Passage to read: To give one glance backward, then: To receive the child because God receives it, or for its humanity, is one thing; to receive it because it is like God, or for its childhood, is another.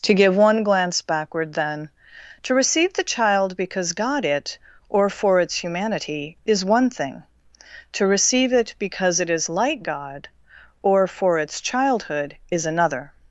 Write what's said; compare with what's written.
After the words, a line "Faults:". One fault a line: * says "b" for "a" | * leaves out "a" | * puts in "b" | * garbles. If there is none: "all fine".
To give one glance backward, then: To receive the child because God it, or for its humanity, is one thing; to receive it because it is like God, or for its childhood, is another.
Faults:
* leaves out "receives"